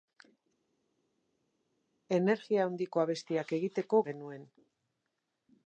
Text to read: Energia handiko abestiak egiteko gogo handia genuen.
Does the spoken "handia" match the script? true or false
false